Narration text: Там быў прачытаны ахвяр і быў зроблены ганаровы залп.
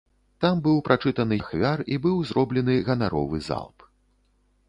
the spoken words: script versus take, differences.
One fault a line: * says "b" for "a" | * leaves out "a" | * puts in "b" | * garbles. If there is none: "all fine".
all fine